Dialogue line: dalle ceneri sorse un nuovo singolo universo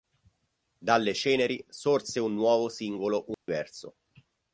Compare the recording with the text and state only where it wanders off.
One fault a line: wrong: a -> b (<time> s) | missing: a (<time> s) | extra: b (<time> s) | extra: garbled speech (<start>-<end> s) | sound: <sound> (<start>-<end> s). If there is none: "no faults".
sound: dropout (3.3-3.5 s)